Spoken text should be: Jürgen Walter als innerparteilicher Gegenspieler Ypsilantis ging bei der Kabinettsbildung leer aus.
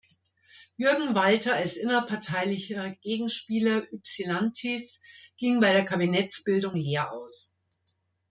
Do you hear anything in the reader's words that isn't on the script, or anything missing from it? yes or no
no